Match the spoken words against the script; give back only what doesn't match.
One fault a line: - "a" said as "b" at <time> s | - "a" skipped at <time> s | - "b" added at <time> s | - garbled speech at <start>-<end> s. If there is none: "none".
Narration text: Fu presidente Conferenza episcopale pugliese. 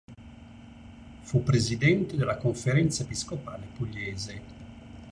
- "della" added at 2.2 s